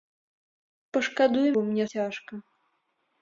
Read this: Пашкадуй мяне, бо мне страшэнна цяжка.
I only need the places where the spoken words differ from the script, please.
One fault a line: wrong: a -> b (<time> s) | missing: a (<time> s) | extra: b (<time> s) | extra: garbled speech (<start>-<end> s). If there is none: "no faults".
missing: мяне (1.5 s)
missing: страшэнна (1.8 s)